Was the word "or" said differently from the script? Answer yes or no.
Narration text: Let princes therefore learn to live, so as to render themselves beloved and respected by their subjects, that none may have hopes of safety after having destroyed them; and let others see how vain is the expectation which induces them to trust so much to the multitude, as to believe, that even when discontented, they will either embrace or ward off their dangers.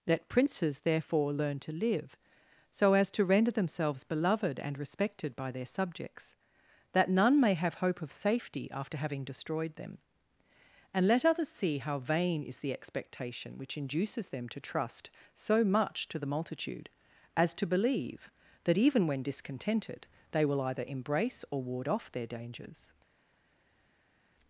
no